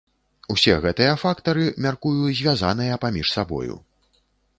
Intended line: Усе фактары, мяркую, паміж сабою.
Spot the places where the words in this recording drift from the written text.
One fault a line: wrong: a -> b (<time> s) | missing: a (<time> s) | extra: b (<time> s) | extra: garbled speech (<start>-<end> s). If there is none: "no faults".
extra: гэтыя (0.8 s)
extra: звязаныя (2.4 s)